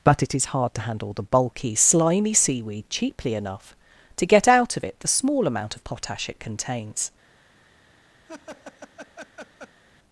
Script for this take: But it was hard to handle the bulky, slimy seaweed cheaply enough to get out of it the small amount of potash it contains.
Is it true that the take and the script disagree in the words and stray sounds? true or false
true